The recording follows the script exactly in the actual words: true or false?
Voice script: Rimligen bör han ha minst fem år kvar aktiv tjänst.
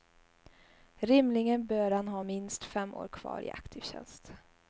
false